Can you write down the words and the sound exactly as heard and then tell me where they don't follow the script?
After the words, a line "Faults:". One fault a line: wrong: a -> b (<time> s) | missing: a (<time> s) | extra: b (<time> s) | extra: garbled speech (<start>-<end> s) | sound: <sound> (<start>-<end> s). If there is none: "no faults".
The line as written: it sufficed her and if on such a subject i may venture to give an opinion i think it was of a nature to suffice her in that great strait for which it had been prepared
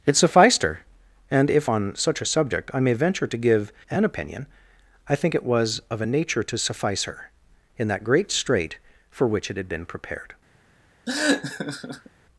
it sufficed her and if on such a subject i may venture to give an opinion i think it was of a nature to suffice her in that great strait for which it had been prepared
Faults:
sound: laugh (11.1-12.1 s)